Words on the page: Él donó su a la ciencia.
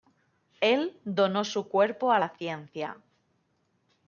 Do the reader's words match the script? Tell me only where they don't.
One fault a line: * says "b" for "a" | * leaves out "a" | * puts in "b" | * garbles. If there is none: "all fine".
* puts in "cuerpo"